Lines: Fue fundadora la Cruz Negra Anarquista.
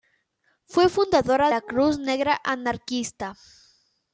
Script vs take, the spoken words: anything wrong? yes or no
no